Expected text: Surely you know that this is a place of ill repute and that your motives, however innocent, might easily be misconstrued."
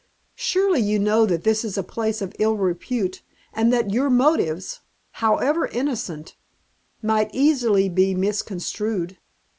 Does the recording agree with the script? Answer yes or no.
yes